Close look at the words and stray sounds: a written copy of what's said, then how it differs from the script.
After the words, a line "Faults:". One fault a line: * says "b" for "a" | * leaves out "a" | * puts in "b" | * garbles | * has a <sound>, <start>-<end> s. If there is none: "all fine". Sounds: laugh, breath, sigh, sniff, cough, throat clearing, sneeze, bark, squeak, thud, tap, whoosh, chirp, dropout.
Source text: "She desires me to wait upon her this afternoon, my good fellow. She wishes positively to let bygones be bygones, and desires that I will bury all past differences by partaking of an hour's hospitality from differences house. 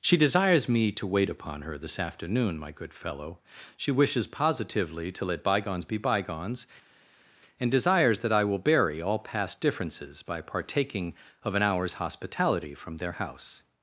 "She desires me to wait upon her this afternoon, my good fellow. She wishes positively to let bygones be bygones, and desires that I will bury all past differences by partaking of an hour's hospitality from their house.
Faults:
* says "their" for "differences"